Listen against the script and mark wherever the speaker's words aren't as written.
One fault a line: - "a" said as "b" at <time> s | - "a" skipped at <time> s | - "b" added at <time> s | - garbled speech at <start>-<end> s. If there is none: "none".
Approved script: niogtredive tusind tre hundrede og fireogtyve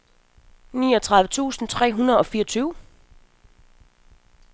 none